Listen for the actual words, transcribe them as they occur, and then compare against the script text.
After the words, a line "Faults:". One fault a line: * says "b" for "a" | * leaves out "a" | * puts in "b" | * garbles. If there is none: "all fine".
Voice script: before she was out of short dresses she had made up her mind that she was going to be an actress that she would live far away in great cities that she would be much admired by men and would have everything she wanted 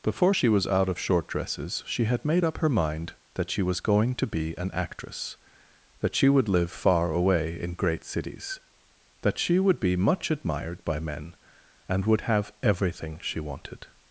before she was out of short dresses she had made up her mind that she was going to be an actress that she would live far away in great cities that she would be much admired by men and would have everything she wanted
Faults:
all fine